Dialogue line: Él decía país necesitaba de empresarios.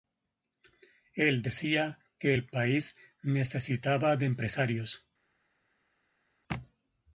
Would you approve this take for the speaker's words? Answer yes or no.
no